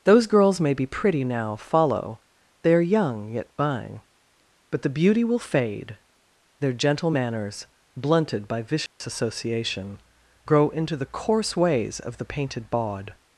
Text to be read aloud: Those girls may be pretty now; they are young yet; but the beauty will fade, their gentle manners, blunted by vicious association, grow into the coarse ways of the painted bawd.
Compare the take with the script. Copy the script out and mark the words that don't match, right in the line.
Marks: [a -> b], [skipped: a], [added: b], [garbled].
Those girls may be pretty now; [added: follow] they are young yet; [added: buying] but the beauty will fade, their gentle manners, blunted by vicious association, grow into the coarse ways of the painted bawd.